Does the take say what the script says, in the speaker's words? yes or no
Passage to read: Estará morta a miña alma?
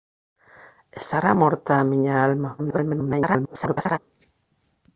no